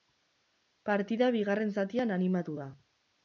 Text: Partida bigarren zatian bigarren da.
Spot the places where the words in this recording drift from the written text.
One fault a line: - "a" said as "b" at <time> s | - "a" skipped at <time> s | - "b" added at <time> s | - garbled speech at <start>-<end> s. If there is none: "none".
- "bigarren" said as "animatu" at 2.2 s